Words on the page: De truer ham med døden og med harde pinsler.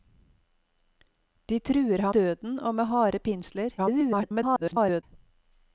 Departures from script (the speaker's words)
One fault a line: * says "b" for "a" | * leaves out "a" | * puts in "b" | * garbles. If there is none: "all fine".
* leaves out "med"
* garbles